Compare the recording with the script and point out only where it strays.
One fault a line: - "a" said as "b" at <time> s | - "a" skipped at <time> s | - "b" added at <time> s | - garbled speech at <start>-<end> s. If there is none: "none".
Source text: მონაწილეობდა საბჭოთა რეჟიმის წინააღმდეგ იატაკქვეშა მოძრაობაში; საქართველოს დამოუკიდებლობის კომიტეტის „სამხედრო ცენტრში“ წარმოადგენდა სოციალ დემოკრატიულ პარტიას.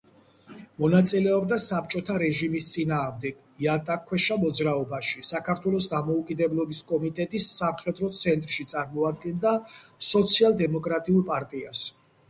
none